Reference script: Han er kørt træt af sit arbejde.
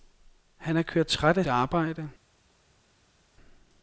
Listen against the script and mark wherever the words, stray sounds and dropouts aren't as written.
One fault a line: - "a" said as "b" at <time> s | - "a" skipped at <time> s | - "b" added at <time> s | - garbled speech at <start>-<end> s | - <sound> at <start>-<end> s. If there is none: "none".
- "sit" skipped at 1.4 s